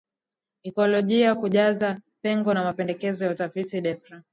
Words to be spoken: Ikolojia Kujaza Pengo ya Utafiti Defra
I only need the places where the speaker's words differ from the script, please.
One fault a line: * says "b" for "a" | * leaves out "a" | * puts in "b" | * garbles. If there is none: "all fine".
* puts in "na Mapendekezo"